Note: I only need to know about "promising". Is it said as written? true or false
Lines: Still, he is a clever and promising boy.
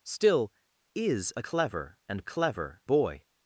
false